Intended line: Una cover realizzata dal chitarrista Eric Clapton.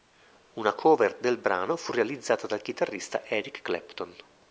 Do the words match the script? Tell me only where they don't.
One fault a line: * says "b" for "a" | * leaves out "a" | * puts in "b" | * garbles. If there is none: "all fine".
* puts in "del brano fu"